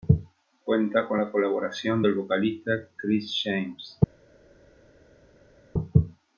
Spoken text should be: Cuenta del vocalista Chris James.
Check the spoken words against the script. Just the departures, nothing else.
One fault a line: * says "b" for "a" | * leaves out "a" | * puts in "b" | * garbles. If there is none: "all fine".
* puts in "con la colaboración"